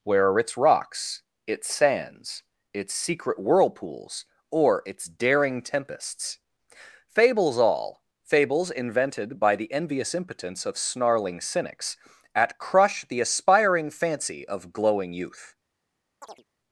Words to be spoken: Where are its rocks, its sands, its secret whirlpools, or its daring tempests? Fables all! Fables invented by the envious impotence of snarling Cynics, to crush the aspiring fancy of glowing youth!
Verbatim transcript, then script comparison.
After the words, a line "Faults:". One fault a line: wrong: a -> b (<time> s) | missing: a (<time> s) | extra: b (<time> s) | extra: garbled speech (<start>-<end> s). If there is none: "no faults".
Where are its rocks, its sands, its secret whirlpools, or its daring tempests? Fables all! Fables invented by the envious impotence of snarling Cynics, at crush the aspiring fancy of glowing youth!
Faults:
wrong: to -> at (12.3 s)